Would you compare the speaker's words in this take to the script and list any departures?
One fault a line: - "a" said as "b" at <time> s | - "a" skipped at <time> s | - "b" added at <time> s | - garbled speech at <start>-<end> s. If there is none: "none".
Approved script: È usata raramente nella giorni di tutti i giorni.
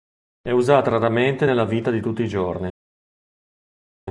- "giorni" said as "vita" at 1.6 s